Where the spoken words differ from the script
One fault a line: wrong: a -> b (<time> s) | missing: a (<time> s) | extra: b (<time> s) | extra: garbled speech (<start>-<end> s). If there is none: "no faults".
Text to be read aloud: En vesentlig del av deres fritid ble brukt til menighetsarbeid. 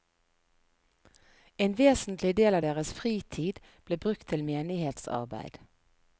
no faults